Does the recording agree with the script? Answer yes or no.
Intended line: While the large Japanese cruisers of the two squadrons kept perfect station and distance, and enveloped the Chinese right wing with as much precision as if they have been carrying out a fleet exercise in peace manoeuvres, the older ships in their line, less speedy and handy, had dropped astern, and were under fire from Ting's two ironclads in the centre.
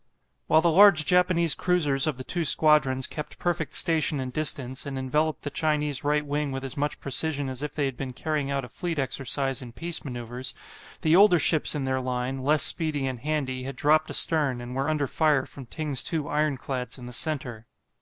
no